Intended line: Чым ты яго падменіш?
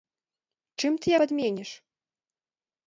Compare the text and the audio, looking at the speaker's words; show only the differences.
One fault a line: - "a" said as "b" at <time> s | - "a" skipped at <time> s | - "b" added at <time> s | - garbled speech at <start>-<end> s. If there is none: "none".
- "яго" skipped at 1.1 s